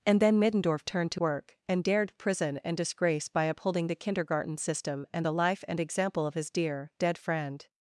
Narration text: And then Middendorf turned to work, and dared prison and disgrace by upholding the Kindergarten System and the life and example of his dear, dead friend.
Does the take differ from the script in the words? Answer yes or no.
no